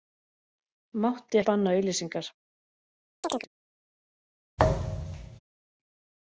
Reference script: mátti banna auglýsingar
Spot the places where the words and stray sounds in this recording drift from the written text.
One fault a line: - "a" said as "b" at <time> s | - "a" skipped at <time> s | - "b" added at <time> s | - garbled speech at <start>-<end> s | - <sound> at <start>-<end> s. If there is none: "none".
- chirp at 3.2-3.5 s
- thud at 4.6-5.4 s